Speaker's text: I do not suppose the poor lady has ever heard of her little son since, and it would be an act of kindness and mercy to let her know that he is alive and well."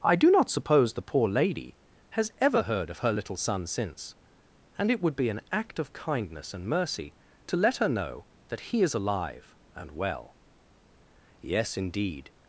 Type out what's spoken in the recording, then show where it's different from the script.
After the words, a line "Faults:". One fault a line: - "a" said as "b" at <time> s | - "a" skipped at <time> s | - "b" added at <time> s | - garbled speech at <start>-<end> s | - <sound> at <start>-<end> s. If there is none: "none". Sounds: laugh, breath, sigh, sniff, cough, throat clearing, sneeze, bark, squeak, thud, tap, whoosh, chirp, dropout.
I do not suppose the poor lady has ever heard of her little son since, and it would be an act of kindness and mercy to let her know that he is alive and well." "Yes, indeed
Faults:
- "Yes indeed" added at 11.4 s